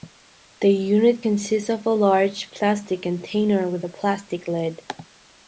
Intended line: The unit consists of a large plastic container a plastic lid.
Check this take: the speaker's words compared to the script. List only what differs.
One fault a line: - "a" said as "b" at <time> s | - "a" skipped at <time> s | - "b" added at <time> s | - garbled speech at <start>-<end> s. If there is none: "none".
- "with" added at 3.7 s